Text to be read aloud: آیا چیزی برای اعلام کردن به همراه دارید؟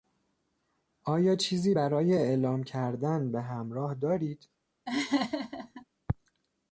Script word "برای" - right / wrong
right